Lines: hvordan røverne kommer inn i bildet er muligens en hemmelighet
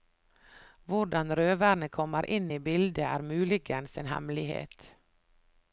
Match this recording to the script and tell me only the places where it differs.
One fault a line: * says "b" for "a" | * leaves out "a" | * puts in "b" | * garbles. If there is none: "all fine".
all fine